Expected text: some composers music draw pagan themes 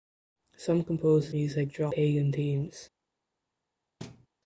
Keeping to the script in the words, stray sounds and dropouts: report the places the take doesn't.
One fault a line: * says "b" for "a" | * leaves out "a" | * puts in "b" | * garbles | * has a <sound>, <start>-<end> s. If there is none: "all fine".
* has a thud, 4.0-4.3 s